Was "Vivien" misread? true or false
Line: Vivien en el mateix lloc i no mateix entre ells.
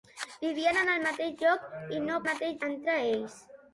false